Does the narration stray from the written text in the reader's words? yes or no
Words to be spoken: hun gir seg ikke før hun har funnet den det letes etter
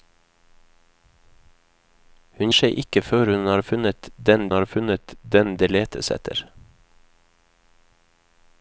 yes